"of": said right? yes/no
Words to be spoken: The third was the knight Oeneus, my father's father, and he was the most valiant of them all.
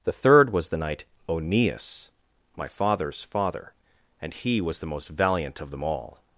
yes